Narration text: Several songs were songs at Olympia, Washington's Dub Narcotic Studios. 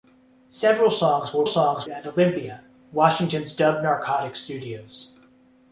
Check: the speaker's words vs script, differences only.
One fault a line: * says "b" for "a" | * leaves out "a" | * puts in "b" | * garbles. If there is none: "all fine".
all fine